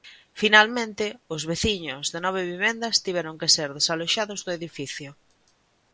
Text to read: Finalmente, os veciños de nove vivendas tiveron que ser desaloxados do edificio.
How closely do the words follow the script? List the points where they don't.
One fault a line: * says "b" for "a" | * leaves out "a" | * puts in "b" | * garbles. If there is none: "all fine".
all fine